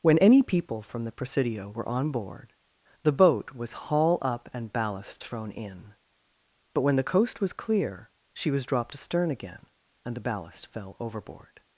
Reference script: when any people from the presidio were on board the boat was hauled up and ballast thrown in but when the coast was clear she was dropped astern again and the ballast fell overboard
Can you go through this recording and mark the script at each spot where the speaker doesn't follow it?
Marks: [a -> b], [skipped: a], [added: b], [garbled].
when any people from the presidio were on board the boat was [hauled -> haul] up and ballast thrown in but when the coast was clear she was dropped astern again and the ballast fell overboard